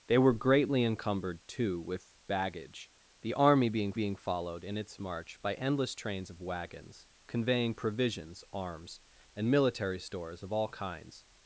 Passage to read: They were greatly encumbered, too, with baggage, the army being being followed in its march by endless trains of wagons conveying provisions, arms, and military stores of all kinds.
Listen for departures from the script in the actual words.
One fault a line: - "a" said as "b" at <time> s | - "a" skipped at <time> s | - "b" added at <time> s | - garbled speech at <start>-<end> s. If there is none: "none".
none